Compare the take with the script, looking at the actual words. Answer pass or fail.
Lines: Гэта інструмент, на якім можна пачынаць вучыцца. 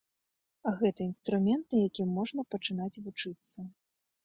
pass